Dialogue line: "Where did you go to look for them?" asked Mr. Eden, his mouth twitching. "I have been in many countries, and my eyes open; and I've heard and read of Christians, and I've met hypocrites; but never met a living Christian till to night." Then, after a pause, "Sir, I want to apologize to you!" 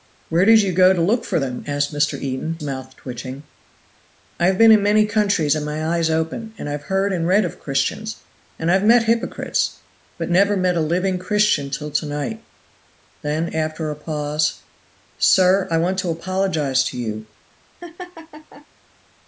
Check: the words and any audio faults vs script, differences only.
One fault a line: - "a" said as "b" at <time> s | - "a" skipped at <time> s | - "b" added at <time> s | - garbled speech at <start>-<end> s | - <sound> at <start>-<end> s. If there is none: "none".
- "his" skipped at 2.6 s
- laugh at 17.8-18.7 s